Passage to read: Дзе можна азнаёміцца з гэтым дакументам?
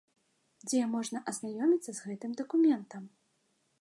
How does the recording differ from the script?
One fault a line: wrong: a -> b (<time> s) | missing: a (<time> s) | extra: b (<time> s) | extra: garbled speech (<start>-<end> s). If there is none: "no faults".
no faults